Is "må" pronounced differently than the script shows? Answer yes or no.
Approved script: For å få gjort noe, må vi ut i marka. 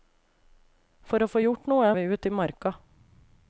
yes